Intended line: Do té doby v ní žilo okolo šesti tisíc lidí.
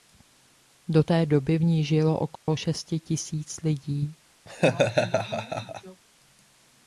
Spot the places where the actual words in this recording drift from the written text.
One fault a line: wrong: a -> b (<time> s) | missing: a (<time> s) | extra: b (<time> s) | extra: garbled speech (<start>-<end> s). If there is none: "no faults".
no faults